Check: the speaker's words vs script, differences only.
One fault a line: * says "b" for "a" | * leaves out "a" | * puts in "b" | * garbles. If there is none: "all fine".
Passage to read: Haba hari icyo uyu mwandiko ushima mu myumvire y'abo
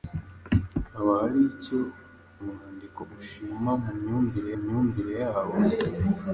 * leaves out "uyu"
* puts in "myumvire"